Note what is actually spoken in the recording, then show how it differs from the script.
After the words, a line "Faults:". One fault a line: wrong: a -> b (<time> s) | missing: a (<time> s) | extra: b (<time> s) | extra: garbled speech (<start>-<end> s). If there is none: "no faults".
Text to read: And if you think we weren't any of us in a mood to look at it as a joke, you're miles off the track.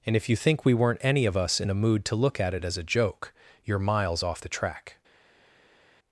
And if you think we weren't any of us in a mood to look at it as a joke, you're miles off the track.
Faults:
no faults